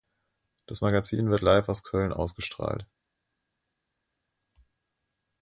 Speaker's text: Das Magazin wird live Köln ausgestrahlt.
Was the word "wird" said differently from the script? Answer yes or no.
no